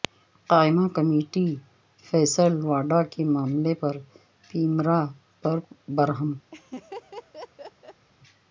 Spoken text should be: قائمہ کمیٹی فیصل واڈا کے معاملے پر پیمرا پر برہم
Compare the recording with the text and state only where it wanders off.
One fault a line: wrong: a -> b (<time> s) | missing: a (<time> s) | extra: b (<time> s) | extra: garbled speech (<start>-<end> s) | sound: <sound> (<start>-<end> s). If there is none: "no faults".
sound: laugh (6.5-8.1 s)